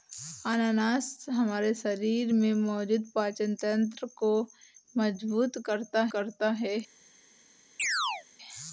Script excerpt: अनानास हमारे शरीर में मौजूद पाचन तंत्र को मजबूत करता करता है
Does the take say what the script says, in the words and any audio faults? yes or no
no